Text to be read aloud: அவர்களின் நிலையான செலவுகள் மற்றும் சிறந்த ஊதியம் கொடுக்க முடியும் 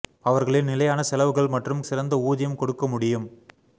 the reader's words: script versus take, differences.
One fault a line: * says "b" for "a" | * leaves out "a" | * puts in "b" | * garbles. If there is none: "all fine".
all fine